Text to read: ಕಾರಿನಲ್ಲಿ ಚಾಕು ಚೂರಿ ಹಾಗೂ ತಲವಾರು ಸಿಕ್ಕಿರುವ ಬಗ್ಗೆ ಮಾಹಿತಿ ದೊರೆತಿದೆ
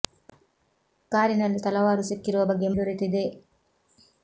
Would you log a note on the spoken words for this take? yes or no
yes